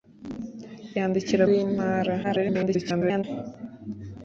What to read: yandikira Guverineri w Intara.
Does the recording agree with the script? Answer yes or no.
no